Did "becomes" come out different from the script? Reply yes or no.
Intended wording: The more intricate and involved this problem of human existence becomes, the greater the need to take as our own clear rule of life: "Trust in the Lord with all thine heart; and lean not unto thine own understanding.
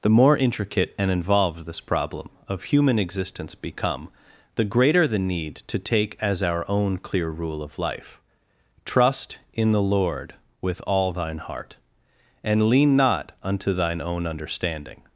yes